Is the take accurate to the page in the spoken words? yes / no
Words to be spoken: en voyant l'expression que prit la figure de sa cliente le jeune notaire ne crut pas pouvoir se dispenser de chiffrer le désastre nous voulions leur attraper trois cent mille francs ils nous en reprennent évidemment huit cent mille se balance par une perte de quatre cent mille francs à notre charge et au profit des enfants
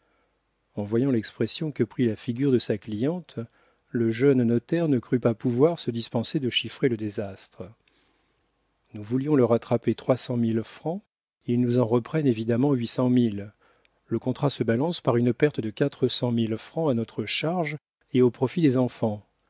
no